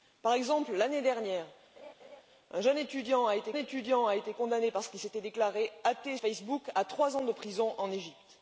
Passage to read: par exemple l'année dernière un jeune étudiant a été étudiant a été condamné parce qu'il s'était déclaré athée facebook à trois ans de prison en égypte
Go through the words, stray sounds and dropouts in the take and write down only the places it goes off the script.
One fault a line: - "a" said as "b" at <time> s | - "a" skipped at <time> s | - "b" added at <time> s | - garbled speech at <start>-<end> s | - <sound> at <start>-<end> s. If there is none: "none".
- laugh at 1.8-2.2 s